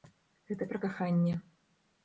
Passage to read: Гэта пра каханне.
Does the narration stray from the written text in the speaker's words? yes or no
no